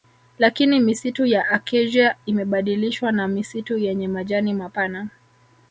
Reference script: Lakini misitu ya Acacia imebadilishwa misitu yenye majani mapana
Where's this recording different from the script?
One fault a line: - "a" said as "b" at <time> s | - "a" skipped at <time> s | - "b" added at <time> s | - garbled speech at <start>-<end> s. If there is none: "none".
- "na" added at 3.1 s